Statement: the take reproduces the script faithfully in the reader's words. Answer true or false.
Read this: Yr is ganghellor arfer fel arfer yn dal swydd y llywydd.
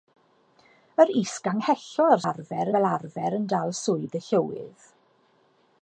true